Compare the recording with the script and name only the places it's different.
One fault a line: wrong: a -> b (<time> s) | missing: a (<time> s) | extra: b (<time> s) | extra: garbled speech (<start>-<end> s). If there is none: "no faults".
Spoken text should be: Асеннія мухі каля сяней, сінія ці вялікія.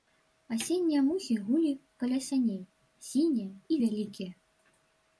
extra: гулі (1.4 s)
wrong: ці -> і (3.7 s)